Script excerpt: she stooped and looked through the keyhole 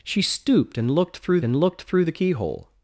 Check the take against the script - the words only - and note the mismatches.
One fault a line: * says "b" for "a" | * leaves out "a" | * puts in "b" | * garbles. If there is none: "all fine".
* puts in "and looked through"